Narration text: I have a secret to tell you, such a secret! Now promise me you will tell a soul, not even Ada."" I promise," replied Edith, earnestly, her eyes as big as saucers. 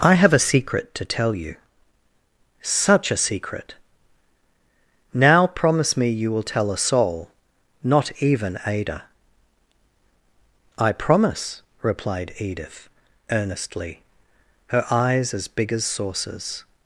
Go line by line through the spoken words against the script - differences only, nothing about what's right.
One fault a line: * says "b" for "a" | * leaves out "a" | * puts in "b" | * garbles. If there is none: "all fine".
all fine